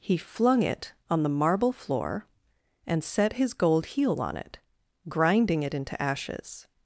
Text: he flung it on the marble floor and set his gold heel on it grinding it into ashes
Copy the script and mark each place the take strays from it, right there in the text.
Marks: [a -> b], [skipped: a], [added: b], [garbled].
he flung it on the marble floor and set his gold heel on it grinding it into ashes